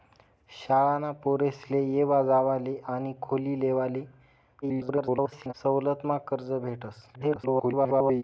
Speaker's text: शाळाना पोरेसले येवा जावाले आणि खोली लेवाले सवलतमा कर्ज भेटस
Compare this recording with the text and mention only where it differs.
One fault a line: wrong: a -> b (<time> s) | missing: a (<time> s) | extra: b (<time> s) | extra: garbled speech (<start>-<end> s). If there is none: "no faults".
extra: garbled speech (4.6-5.5 s)
extra: garbled speech (7.1-8.2 s)